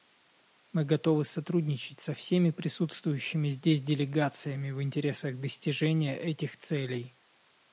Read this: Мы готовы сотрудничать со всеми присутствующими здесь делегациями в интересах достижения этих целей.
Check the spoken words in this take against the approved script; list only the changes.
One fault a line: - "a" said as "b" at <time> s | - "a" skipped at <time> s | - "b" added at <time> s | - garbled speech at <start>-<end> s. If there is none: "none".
none